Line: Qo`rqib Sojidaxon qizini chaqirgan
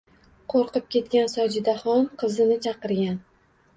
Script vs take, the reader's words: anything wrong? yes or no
yes